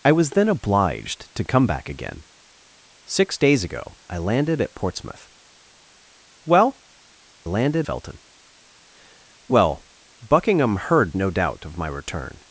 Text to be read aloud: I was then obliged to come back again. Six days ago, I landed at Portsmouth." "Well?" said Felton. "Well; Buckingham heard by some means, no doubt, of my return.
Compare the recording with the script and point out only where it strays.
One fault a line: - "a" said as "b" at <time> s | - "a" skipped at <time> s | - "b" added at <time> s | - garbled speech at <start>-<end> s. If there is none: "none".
- "said" said as "landed" at 7.4 s
- "by some means" skipped at 11.1 s